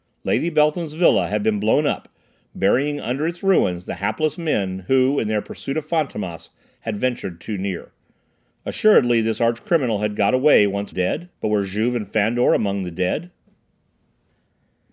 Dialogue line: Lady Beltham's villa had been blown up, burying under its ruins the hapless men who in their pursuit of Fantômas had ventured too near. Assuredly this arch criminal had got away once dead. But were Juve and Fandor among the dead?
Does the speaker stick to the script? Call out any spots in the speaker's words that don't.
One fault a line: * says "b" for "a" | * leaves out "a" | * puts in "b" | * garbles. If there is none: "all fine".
all fine